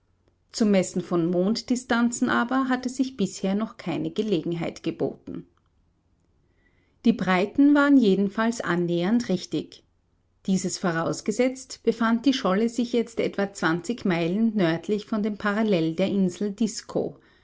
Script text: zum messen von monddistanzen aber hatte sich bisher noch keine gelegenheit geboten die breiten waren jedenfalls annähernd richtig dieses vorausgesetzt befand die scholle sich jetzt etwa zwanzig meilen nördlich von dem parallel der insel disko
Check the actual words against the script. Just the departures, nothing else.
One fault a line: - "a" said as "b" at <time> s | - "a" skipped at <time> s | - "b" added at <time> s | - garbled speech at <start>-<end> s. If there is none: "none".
none